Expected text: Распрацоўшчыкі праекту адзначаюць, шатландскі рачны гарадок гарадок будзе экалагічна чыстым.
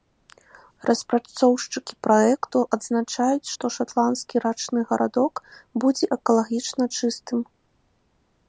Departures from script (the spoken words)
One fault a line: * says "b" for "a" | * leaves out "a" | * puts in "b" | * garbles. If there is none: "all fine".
* puts in "што"
* leaves out "гарадок"